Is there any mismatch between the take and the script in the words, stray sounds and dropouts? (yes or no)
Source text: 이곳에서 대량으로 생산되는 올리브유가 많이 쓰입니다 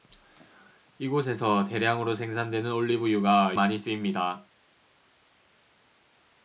no